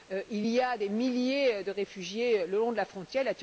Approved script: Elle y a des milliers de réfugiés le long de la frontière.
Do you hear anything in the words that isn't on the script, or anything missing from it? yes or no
yes